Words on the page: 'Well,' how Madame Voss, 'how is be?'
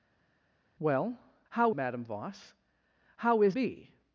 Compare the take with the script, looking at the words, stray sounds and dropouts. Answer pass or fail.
pass